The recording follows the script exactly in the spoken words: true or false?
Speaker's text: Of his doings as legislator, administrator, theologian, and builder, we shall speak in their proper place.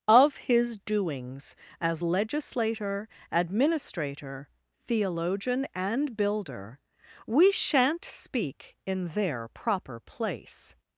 false